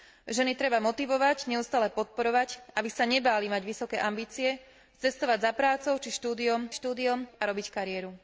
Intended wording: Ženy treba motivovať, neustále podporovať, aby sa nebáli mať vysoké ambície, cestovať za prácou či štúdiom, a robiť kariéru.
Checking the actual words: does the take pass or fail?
fail